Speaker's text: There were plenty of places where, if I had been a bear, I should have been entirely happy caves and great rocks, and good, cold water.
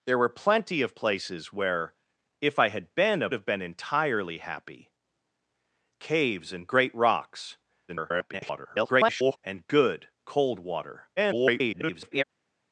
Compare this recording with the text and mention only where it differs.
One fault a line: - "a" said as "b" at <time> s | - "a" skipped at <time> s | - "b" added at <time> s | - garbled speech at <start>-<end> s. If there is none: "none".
- "bear I should" skipped at 3.3 s
- garbled speech at 7.9-9.4 s
- garbled speech at 11.2-12.2 s